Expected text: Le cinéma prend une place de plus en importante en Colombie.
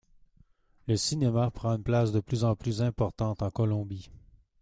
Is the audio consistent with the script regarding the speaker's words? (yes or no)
no